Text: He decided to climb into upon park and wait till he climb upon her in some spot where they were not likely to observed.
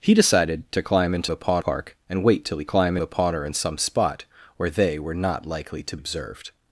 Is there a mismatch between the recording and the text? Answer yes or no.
no